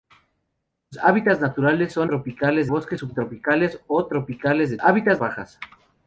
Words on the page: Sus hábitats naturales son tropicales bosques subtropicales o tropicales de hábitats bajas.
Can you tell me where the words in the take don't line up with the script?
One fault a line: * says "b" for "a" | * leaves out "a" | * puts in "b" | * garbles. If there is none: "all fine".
all fine